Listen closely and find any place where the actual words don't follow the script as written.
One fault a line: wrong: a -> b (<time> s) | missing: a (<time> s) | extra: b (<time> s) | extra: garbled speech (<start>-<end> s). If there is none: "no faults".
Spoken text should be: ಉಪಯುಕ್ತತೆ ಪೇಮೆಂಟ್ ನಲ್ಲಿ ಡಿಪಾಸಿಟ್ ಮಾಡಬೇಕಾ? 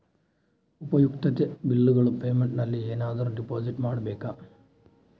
extra: ಬಿಲ್ಲುಗಳ (1.6 s)
extra: ಏನಾದರೂ (2.9 s)